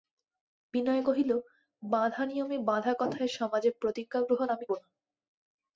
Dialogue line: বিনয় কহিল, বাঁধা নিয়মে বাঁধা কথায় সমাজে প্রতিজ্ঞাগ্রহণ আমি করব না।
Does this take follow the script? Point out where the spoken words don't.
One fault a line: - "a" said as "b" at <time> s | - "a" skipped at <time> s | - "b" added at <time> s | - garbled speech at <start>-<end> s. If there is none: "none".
- "করব" skipped at 4.7 s